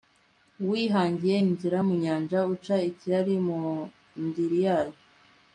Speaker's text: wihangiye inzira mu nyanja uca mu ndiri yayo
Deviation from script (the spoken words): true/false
true